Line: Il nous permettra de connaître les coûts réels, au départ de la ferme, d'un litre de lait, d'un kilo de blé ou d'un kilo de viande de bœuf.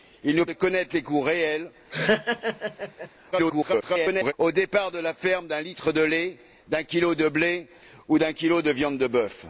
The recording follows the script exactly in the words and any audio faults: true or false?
false